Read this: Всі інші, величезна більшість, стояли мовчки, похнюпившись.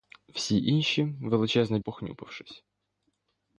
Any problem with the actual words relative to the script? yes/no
yes